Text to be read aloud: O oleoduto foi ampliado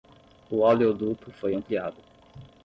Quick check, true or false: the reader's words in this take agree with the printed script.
true